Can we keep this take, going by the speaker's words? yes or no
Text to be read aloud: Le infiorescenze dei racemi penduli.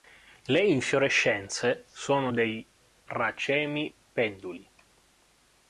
no